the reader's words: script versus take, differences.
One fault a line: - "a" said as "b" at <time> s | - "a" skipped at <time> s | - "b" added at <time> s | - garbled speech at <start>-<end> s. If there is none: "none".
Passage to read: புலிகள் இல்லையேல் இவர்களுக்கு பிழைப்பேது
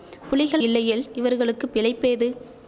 none